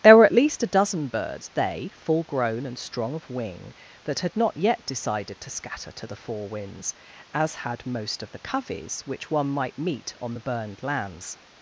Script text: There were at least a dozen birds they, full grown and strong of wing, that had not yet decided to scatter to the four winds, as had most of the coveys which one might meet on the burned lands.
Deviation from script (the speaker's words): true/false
false